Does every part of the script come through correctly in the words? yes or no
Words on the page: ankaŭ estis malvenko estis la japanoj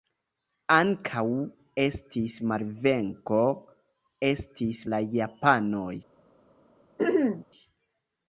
yes